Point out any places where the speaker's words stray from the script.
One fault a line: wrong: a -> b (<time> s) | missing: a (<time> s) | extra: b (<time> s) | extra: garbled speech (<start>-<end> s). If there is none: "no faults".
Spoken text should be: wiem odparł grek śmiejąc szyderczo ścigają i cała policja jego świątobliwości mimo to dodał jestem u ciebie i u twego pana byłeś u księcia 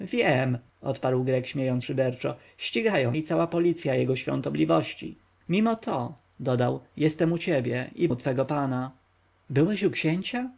no faults